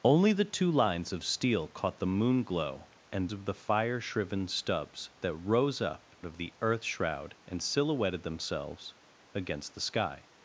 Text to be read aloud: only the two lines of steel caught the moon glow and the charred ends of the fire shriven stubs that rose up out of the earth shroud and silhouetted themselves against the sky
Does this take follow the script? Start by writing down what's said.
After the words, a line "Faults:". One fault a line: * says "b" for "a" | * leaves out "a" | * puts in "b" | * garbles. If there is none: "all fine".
only the two lines of steel caught the moon glow and of the fire shriven stubs that rose up of the earth shroud and silhouetted themselves against the sky
Faults:
* leaves out "the charred ends"
* leaves out "out"